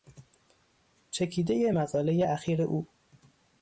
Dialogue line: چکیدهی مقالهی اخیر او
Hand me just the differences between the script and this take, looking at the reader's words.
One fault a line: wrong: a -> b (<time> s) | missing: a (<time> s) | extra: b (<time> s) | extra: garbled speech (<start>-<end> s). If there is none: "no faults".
no faults